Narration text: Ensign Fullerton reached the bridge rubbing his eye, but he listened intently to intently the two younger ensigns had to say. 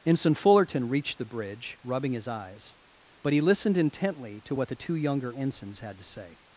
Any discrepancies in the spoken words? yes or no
yes